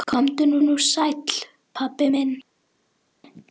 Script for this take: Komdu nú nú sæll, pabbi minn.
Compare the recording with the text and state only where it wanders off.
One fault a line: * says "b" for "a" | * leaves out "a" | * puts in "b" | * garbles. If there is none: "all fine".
all fine